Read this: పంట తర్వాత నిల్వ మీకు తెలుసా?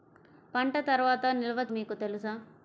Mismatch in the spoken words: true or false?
false